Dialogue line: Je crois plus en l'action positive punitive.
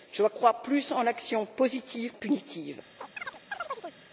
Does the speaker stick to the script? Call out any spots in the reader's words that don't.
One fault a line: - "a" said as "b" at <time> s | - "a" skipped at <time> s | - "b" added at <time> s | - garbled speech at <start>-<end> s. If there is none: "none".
none